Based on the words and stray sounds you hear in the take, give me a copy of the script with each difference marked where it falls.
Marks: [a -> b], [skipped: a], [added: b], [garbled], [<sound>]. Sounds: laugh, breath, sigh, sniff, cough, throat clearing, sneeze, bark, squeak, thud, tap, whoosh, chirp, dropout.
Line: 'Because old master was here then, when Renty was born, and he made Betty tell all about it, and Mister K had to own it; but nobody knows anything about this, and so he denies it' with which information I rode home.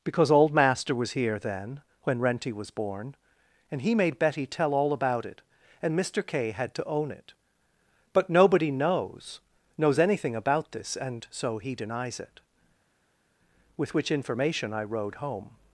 'Because old master was here then, when Renty was born, and he made Betty tell all about it, and Mister K had to own it; but nobody knows [added: knows] anything about this, and so he denies it' with which information I rode home.